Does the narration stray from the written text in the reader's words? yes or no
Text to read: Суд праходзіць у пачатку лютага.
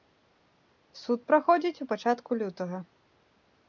no